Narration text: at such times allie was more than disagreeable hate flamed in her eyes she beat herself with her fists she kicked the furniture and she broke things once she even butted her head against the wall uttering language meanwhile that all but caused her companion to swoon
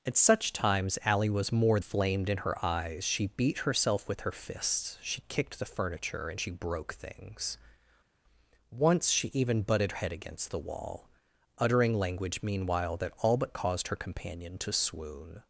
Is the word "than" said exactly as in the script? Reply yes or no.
no